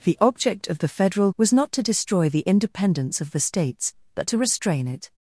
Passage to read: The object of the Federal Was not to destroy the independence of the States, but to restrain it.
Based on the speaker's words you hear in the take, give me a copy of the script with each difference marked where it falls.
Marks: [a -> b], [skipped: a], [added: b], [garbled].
The object of the Federal Was not to destroy the independence of the States, but to restrain it.